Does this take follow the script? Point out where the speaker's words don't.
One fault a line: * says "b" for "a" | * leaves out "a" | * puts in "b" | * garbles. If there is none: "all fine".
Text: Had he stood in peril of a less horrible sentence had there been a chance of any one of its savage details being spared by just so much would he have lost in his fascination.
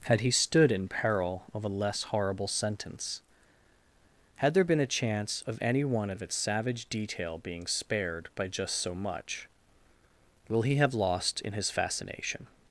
* says "detail" for "details"
* says "will" for "would"